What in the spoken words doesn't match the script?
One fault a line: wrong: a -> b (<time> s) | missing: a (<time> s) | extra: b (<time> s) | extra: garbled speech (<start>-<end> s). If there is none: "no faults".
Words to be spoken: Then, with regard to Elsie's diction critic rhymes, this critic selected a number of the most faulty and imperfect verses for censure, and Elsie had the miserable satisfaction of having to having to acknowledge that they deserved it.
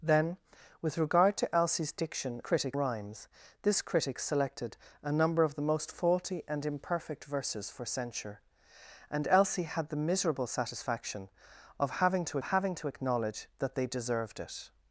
no faults